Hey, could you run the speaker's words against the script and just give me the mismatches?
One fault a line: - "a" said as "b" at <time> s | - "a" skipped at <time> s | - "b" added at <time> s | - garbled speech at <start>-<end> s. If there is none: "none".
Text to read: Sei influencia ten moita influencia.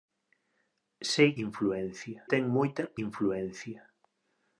none